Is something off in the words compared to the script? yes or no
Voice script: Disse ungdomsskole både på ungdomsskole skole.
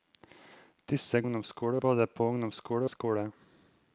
no